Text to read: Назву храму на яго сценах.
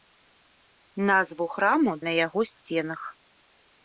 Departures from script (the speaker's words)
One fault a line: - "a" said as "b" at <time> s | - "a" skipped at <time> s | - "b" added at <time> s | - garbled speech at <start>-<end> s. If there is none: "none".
none